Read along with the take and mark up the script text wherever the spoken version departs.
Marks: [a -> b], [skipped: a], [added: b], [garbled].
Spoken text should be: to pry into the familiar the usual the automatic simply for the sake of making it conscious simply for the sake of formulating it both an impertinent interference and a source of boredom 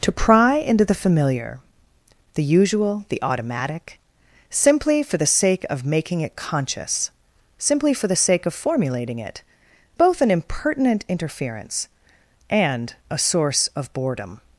to pry into the familiar the usual the automatic simply for the sake of making it conscious simply for the sake of formulating it both an impertinent interference and a source of boredom